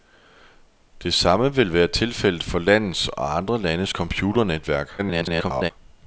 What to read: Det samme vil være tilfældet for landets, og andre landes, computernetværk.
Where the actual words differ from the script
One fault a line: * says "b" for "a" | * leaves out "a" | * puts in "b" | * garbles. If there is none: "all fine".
* garbles